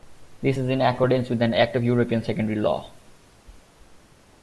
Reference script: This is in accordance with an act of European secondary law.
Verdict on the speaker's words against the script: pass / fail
pass